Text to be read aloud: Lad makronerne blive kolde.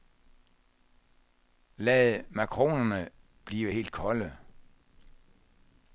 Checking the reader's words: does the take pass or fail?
fail